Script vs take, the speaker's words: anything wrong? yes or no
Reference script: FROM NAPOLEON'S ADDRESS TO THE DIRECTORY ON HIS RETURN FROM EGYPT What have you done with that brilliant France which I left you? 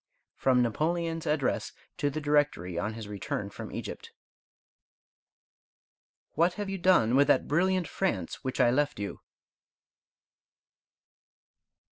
no